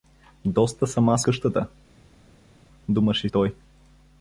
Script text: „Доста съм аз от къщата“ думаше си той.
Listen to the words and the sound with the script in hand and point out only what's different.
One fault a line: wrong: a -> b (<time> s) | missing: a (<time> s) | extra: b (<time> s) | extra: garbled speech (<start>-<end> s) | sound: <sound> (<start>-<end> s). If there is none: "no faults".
missing: от (1.2 s)
missing: си (3.3 s)